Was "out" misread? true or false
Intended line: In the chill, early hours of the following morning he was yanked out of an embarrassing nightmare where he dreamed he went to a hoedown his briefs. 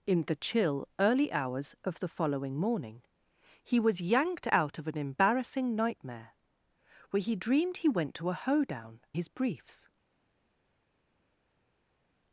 false